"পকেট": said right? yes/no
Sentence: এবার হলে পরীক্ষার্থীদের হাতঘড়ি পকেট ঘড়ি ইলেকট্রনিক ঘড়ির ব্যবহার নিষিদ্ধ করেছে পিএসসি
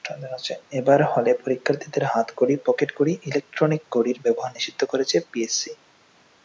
yes